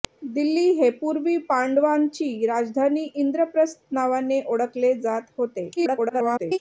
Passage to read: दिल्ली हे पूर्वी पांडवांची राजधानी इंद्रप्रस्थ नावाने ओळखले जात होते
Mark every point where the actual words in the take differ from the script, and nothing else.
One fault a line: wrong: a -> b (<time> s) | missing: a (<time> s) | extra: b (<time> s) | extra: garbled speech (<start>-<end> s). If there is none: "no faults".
extra: garbled speech (5.8-6.6 s)